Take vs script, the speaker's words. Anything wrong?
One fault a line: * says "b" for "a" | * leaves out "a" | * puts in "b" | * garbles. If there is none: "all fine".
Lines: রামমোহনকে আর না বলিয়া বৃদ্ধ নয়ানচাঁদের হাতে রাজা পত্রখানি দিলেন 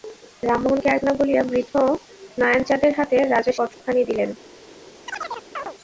all fine